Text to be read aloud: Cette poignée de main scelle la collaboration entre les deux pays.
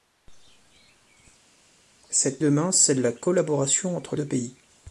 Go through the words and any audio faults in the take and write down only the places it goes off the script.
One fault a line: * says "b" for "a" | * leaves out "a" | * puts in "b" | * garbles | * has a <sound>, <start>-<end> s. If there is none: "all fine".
* leaves out "poignée"
* leaves out "les"